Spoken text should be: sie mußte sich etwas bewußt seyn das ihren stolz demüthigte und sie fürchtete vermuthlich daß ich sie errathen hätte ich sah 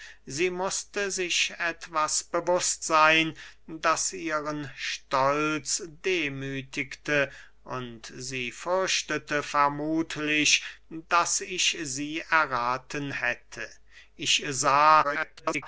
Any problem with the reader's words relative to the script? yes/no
yes